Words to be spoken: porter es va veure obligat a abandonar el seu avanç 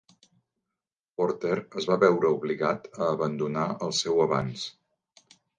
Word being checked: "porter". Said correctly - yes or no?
yes